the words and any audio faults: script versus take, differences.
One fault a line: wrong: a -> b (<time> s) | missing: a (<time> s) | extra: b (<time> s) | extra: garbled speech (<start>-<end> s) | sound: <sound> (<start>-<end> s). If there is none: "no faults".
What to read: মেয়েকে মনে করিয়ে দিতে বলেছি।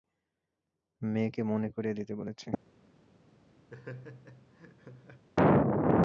sound: laugh (3.7-5.3 s)